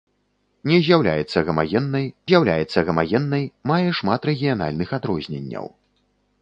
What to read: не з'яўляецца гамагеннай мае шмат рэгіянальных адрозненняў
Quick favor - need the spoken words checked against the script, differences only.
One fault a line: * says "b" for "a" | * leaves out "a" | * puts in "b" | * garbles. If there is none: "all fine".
* puts in "з'яўляецца гамагеннай"